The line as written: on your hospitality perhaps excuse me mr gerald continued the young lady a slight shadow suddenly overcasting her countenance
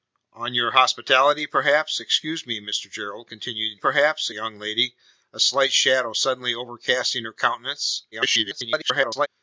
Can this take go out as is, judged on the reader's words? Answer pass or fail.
fail